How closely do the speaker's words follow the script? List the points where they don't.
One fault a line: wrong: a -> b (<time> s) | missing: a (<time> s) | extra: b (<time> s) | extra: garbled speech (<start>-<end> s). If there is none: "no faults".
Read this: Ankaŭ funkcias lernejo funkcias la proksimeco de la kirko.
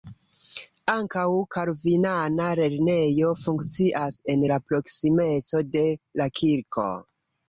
wrong: funkcias -> kalvinana (1.6 s)
extra: en (4.3 s)